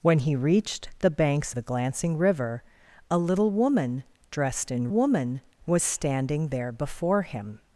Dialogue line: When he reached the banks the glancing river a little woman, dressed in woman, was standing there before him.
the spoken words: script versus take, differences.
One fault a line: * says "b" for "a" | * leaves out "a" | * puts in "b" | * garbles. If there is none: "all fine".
all fine